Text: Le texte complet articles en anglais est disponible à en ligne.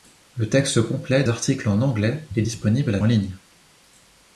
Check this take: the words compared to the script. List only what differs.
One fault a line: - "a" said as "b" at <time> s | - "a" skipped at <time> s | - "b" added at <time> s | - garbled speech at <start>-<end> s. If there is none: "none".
none